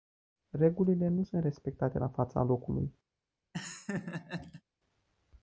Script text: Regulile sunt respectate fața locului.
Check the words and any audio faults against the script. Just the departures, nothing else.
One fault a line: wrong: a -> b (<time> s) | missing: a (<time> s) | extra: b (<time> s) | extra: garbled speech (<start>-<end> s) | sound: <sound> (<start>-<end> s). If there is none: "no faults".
extra: nu (1.1 s)
extra: la (2.0 s)
sound: laugh (3.5-4.6 s)